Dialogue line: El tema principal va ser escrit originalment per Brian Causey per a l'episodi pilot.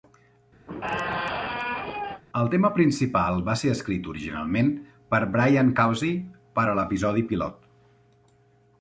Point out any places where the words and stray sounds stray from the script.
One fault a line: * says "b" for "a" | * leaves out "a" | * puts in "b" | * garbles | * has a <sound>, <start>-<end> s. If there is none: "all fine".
* has a squeak, 0.7-2.2 s